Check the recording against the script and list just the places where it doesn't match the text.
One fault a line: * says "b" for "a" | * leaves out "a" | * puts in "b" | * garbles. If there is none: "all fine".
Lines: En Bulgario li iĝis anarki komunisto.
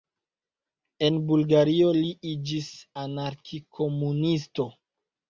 all fine